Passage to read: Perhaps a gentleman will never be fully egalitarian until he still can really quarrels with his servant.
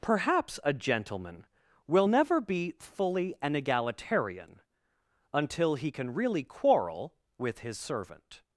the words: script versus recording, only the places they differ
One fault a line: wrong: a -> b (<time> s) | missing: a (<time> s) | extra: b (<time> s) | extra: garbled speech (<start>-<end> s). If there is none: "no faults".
extra: an (3.4 s)
missing: still (5.9 s)
wrong: quarrels -> quarrel (6.4 s)